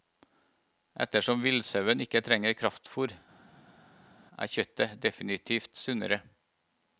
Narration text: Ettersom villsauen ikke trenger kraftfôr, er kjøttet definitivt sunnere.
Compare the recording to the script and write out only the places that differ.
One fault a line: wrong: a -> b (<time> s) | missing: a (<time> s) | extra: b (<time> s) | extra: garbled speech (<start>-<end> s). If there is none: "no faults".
no faults